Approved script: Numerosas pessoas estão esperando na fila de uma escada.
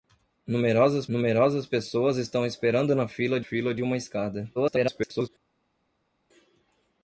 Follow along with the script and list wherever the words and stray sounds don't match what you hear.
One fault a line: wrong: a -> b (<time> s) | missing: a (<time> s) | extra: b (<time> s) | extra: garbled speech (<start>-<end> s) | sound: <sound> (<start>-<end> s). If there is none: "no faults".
extra: numerosas (1.1 s)
extra: fila (3.4 s)
extra: garbled speech (4.6-5.3 s)